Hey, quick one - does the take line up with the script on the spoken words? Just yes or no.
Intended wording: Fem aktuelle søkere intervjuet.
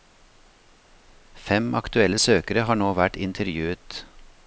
no